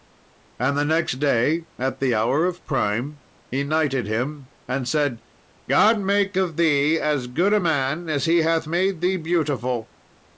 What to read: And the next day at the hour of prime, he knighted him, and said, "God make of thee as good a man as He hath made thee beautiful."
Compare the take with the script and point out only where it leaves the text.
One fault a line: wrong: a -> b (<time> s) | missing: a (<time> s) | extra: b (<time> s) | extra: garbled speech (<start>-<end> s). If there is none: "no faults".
no faults